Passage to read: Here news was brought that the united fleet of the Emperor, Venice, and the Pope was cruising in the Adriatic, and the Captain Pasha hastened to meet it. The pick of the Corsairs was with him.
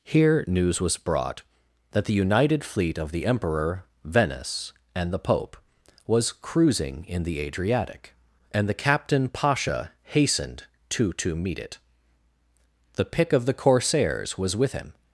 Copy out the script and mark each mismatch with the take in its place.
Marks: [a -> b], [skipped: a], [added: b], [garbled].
Here news was brought that the united fleet of the Emperor, Venice, and the Pope was cruising in the Adriatic, and the Captain Pasha hastened to [added: to] meet it. The pick of the Corsairs was with him.